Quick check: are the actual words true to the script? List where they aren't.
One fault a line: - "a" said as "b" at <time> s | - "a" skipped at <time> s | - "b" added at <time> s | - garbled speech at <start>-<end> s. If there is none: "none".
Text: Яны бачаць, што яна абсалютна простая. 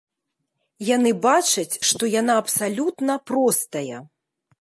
none